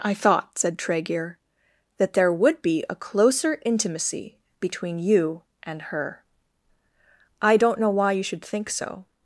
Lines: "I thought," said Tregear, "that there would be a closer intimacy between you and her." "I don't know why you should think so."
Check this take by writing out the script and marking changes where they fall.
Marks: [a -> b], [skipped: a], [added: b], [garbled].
"I thought," said Tregear, "that there would be a closer intimacy between you and her." "I don't know why you should think so."